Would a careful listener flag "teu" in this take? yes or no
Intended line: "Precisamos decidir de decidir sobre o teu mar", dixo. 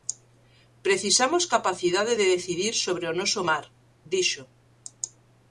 yes